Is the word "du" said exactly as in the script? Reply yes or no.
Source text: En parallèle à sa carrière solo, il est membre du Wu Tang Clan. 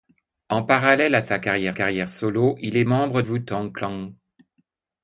no